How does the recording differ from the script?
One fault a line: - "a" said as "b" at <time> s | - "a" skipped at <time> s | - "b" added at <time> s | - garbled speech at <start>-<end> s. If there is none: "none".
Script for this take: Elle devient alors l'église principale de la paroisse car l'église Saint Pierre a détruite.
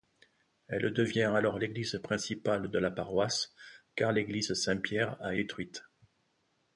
none